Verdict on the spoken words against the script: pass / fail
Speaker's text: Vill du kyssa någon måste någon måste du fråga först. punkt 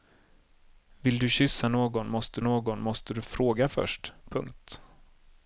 pass